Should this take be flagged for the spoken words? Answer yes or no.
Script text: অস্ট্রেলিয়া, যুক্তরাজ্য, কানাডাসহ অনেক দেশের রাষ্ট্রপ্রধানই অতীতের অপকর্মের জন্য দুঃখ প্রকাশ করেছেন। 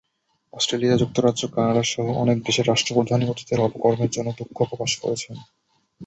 no